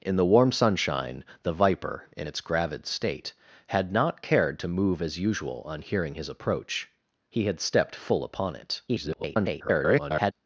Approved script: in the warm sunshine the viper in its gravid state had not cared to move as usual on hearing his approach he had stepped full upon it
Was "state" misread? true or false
false